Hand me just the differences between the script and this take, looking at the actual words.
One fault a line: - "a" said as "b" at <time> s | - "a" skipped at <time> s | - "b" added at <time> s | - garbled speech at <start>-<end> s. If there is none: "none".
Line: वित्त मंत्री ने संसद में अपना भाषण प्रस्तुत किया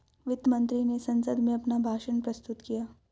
none